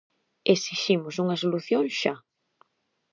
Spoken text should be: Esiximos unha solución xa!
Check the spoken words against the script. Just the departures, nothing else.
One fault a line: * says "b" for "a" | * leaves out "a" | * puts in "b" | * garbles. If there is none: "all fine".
all fine